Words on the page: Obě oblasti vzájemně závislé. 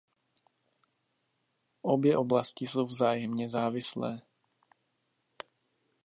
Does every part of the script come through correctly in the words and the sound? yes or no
no